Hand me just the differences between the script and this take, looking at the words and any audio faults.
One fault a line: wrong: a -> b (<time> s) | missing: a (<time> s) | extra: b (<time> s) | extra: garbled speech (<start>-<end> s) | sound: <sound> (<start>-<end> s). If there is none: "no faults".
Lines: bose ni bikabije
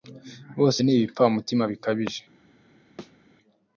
extra: ibipfamutima (1.0 s)
sound: thud (3.0-3.2 s)